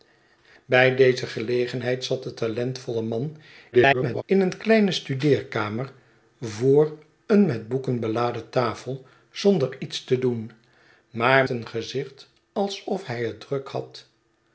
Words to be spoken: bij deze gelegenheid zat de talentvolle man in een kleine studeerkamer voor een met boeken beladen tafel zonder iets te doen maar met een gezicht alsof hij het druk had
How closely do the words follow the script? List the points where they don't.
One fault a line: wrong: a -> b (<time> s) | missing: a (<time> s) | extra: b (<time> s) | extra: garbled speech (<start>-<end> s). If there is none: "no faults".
extra: garbled speech (3.7-4.2 s)
missing: met (11.4 s)